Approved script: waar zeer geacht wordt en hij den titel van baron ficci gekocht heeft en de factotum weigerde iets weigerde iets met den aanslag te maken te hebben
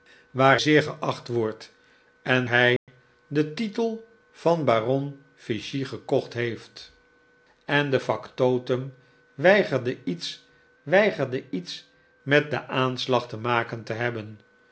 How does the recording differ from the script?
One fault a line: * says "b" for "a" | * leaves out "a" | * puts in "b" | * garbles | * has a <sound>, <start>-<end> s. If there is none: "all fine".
* has a dropout, 2.8-2.9 s